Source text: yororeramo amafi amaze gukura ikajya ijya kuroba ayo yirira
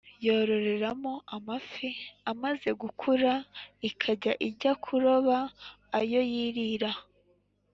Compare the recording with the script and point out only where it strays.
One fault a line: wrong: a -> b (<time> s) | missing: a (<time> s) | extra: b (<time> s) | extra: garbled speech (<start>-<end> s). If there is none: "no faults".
no faults